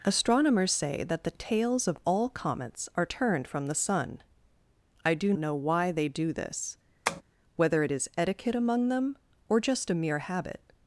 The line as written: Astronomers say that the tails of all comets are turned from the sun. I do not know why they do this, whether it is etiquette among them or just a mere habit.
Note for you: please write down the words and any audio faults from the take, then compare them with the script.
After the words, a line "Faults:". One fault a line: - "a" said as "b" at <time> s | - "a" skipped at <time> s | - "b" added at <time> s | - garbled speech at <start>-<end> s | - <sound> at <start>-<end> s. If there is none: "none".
Astronomers say that the tails of all comets are turned from the sun. I do know why they do this, whether it is etiquette among them or just a mere habit.
Faults:
- "not" skipped at 5.3 s
- tap at 7.1-7.2 s